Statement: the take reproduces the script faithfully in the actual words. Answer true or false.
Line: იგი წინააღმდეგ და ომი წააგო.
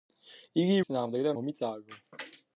true